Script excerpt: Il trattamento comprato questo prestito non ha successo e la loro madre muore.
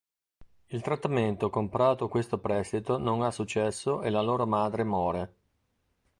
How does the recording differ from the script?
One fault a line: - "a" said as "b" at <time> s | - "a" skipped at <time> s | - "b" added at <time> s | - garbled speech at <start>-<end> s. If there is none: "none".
none